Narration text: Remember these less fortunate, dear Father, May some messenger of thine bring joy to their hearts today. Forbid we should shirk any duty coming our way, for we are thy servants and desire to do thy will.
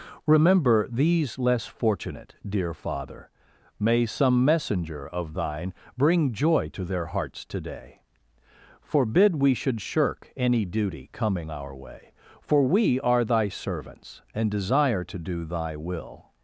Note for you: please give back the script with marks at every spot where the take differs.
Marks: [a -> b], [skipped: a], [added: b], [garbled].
Remember these less fortunate, dear Father, May some messenger of thine bring joy to their hearts today. Forbid we should shirk any duty coming our way, for we are thy servants and desire to do thy will.